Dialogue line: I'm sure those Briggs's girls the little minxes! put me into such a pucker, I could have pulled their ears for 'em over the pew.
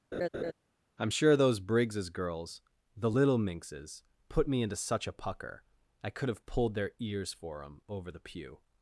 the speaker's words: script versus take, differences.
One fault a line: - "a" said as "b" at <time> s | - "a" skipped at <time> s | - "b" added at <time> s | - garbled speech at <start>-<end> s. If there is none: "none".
none